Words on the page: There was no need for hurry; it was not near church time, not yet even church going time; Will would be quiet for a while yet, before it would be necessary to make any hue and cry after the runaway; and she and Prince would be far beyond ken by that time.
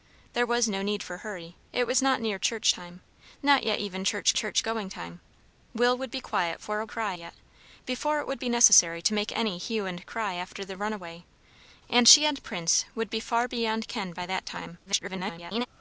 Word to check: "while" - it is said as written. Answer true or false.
false